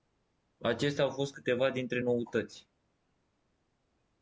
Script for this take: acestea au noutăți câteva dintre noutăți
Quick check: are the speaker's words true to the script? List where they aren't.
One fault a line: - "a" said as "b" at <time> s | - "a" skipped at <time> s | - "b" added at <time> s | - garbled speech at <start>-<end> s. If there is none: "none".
- "noutăți" said as "fost" at 1.1 s